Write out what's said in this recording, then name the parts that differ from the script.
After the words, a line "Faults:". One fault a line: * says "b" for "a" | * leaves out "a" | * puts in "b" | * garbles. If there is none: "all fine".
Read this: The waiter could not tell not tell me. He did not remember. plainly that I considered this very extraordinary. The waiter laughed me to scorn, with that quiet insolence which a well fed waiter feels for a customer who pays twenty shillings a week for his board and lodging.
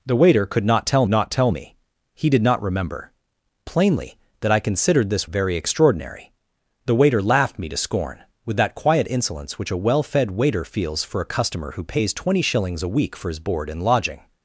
The waiter could not tell not tell me. He did not remember. plainly that I considered this very extraordinary. The waiter laughed me to scorn, with that quiet insolence which a well fed waiter feels for a customer who pays twenty shillings a week for his board and lodging.
Faults:
all fine